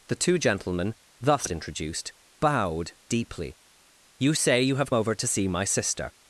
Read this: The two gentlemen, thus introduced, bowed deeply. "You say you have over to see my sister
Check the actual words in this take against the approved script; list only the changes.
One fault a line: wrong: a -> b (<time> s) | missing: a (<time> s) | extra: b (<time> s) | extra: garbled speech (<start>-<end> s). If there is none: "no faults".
no faults